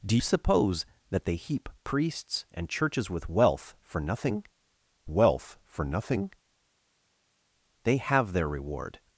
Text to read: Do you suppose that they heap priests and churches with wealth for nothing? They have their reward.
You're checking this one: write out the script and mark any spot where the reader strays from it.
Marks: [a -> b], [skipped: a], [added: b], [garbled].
Do [skipped: you] suppose that they heap priests and churches with wealth for nothing? [added: wealth for nothing] They have their reward.